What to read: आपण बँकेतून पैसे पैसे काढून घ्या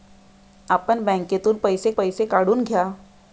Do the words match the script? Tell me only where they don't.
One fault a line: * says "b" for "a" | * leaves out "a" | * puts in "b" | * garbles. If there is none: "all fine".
all fine